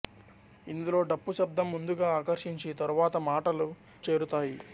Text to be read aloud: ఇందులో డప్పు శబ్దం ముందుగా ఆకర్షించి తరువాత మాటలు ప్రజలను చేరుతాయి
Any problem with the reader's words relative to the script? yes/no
yes